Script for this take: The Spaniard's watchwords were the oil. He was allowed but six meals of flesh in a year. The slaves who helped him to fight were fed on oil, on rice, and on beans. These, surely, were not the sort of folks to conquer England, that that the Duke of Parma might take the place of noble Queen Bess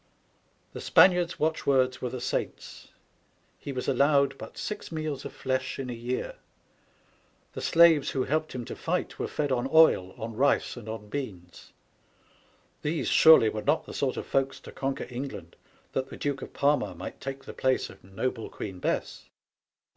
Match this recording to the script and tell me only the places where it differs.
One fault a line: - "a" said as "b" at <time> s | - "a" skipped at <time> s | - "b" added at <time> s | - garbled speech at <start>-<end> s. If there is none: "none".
- "oil" said as "saints" at 2.2 s
- "that" skipped at 16.1 s